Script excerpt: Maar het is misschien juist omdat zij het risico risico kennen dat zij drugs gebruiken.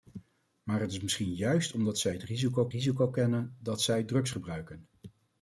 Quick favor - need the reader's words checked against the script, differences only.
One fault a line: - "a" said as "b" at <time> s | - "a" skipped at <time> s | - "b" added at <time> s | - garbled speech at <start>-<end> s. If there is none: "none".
none